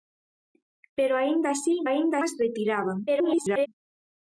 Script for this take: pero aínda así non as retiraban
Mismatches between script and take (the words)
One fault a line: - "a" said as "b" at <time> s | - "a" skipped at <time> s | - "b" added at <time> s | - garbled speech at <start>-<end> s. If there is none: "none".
- "non" said as "aínda" at 1.8 s
- garbled speech at 3.1-3.7 s